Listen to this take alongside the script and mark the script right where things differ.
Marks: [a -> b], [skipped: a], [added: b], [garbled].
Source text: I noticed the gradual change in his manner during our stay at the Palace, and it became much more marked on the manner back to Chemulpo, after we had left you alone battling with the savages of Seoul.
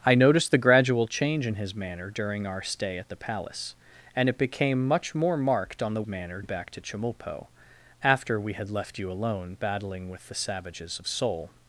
I noticed the gradual change in his manner during our stay at the Palace, and it became much more marked on the manner back to Chemulpo, after we had left you alone battling with the savages of Seoul.